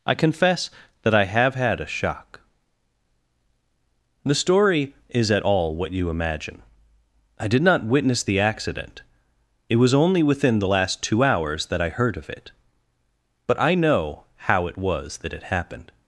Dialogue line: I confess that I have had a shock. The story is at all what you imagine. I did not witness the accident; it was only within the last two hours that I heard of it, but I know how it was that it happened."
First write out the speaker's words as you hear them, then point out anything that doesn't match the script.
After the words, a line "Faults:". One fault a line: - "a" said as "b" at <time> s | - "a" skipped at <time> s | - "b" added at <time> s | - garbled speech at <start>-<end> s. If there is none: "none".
I confess that I have had a shock. The story is at all what you imagine. I did not witness the accident; it was only within the last two hours that I heard of it, but I know how it was that it happened."
Faults:
none